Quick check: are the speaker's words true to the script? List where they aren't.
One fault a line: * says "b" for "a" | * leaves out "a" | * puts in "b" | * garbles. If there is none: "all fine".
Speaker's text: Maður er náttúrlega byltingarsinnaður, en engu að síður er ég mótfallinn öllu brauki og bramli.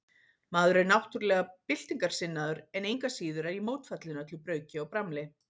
all fine